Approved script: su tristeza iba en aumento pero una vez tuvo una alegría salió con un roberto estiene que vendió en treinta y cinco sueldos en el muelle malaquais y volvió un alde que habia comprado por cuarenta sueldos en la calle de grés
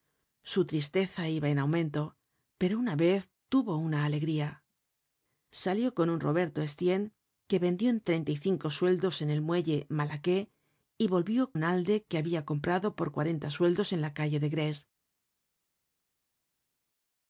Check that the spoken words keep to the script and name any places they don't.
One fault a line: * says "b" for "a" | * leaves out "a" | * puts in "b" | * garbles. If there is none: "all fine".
all fine